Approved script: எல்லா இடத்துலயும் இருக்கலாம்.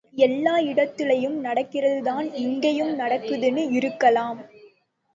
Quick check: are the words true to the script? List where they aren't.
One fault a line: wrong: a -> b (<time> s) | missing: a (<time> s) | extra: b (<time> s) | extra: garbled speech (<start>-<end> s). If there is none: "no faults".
extra: நடக்கிறதுதான் இங்கேயும் நடக்குதுன்னு (1.4 s)